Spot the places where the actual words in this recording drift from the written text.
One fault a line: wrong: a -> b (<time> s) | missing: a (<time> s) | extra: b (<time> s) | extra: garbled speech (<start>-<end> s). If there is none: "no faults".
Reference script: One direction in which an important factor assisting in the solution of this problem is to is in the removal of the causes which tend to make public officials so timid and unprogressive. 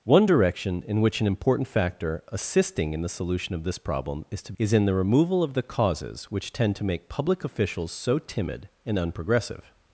no faults